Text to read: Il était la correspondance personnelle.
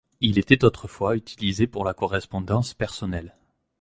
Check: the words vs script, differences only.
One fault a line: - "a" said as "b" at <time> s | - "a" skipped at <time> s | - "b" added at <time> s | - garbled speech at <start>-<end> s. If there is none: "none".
- "autrefois utilisé pour" added at 0.6 s